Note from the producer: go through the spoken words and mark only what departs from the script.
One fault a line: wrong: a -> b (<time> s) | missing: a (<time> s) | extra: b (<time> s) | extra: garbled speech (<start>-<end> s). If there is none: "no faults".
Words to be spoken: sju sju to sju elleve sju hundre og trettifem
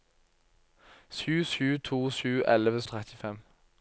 missing: sju hundre (2.8 s)